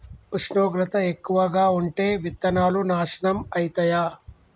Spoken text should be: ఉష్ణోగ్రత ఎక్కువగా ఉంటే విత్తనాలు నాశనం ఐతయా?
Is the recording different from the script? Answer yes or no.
no